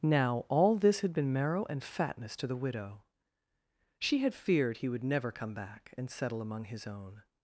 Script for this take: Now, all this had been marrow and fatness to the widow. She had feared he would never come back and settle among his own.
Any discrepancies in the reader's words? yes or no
no